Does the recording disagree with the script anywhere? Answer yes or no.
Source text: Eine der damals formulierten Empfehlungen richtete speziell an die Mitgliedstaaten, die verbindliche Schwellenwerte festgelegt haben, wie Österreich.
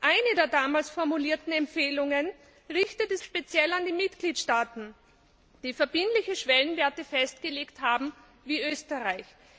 no